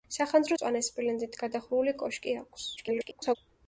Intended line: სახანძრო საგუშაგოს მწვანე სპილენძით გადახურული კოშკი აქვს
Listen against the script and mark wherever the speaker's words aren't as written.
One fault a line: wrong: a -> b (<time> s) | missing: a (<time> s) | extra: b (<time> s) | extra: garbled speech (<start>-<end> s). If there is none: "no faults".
missing: საგუშაგოს (0.6 s)
extra: garbled speech (2.8-3.4 s)